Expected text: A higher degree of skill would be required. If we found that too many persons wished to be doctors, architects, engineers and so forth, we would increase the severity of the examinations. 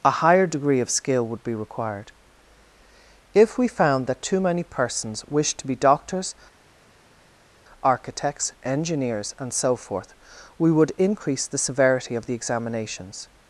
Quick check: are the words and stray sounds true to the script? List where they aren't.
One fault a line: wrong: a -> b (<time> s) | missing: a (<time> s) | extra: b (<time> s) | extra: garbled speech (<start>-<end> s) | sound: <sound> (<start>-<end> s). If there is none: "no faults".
no faults